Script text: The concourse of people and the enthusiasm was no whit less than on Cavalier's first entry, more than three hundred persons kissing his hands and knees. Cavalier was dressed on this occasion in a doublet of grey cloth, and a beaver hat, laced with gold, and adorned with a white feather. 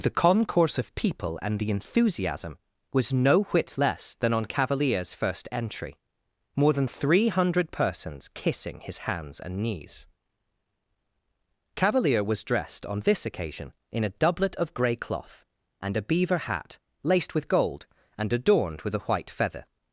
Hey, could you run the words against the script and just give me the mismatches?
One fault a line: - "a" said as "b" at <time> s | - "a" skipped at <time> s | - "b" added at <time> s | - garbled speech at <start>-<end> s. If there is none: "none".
none